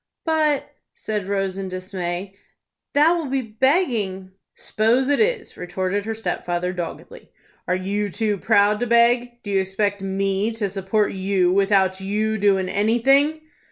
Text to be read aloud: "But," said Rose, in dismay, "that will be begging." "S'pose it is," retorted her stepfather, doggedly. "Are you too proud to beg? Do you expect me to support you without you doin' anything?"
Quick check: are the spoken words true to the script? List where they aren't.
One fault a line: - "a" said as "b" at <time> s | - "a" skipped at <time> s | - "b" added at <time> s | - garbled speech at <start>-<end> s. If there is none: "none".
none